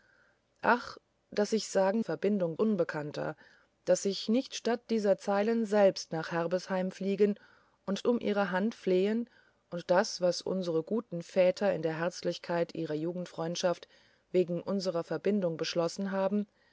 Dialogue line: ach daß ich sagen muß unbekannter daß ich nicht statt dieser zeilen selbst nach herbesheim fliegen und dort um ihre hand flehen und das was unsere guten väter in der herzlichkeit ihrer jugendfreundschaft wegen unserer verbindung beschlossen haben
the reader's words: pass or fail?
fail